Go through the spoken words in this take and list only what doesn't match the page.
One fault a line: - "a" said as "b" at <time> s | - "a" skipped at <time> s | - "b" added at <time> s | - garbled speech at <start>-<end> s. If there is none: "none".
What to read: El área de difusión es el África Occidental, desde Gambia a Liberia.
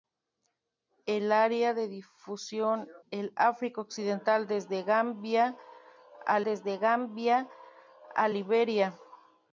- "es" skipped at 2.9 s
- "desde Gambia a" added at 6.4 s